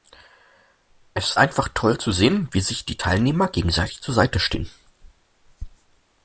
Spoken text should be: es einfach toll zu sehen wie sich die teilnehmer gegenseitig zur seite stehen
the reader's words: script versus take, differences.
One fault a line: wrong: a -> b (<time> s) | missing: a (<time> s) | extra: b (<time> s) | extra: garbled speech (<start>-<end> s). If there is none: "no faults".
no faults